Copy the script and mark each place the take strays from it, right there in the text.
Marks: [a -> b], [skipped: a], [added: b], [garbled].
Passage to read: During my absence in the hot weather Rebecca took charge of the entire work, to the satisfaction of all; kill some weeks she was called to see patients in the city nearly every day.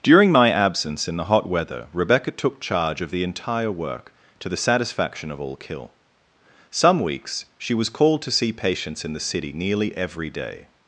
During my absence in the hot weather Rebecca took charge of the entire work, to the satisfaction of all; kill some weeks she was called to see patients in the city nearly every day.